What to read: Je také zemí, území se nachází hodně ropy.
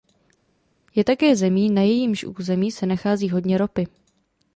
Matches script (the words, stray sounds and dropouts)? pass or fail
fail